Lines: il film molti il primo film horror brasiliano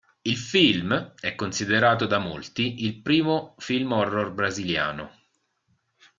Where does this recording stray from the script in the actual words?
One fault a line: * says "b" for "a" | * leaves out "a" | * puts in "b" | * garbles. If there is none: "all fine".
* puts in "è considerato da"